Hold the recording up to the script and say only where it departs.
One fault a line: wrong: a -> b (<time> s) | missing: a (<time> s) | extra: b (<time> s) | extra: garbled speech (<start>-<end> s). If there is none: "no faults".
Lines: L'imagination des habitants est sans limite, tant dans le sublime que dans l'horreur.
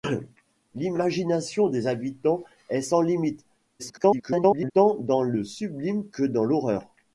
extra: garbled speech (3.8-4.7 s)